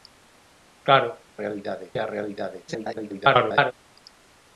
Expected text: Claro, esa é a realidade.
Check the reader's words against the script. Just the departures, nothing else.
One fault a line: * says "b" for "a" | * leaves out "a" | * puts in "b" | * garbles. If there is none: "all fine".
* says "realidade" for "esa"
* garbles